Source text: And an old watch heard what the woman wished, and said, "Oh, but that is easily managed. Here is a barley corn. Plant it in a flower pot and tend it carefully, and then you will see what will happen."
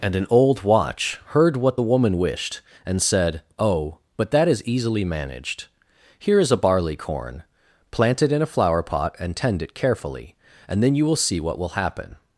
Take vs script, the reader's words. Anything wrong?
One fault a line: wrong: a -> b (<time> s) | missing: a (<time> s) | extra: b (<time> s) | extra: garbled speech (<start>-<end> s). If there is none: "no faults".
no faults